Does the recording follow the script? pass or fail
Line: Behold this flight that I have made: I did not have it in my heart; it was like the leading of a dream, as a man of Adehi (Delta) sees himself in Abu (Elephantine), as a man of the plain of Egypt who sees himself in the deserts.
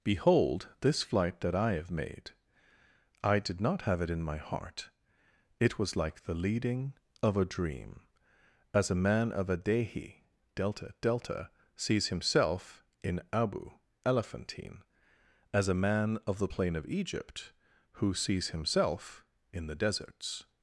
fail